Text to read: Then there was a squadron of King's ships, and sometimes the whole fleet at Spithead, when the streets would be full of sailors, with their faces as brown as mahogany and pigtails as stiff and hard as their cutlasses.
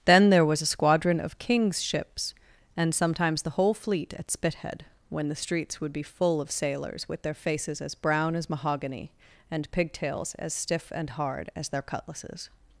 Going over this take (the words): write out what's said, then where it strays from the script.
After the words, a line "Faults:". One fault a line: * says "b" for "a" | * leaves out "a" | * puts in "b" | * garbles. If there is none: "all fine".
Then there was a squadron of King's ships, and sometimes the whole fleet at Spithead, when the streets would be full of sailors, with their faces as brown as mahogany and pigtails as stiff and hard as their cutlasses.
Faults:
all fine